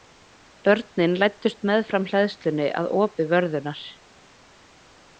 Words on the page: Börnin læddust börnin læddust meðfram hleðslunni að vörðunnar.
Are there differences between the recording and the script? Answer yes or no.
yes